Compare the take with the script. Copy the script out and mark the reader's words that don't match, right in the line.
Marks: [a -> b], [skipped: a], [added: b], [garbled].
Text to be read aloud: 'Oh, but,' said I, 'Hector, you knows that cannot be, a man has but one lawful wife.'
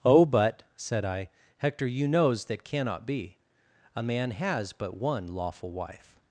'Oh, but,' said I, 'Hector, you knows that cannot be, a man has but one lawful wife.'